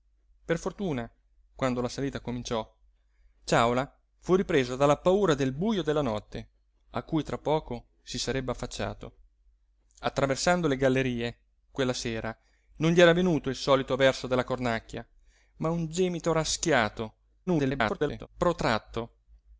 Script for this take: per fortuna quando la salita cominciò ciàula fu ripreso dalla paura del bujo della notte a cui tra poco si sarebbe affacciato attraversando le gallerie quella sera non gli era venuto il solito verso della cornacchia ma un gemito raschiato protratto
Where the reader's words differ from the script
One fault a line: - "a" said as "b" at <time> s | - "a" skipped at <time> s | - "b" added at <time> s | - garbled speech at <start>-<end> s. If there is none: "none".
- garbled speech at 17.5-18.3 s